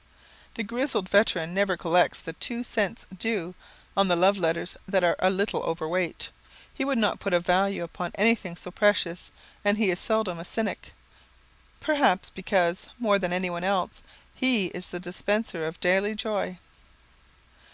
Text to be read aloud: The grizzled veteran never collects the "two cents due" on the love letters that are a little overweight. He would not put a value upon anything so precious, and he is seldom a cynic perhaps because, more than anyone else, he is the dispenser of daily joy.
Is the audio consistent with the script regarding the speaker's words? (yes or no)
yes